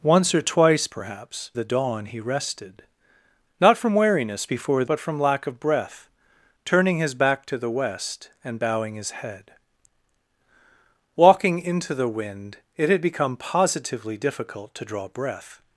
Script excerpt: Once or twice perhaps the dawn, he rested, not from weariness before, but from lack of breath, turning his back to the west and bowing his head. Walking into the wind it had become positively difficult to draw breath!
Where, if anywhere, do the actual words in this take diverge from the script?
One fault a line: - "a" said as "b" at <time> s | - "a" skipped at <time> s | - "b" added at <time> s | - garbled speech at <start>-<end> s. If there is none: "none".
none